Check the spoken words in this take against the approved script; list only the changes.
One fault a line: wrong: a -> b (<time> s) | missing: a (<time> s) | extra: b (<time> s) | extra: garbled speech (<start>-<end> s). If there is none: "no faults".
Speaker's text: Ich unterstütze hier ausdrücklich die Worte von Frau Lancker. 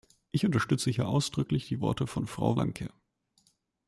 no faults